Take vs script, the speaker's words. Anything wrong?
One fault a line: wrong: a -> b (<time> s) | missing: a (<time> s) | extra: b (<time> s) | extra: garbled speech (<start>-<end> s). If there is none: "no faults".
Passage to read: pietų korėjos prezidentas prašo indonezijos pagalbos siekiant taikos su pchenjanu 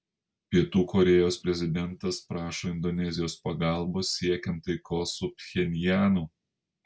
no faults